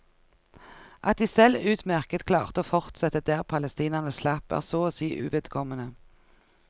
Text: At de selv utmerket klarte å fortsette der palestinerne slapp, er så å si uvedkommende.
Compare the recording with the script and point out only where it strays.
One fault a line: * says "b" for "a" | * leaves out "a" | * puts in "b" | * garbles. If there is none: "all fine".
all fine